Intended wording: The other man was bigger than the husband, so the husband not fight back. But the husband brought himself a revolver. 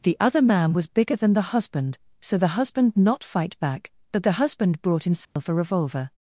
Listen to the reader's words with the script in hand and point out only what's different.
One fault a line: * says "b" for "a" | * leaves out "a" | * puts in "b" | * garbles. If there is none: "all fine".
all fine